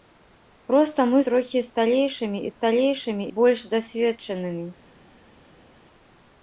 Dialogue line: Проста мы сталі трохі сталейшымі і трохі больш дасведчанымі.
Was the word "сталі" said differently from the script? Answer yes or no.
yes